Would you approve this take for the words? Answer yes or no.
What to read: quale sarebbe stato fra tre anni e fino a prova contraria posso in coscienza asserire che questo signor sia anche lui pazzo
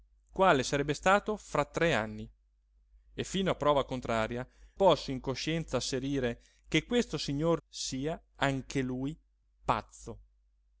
yes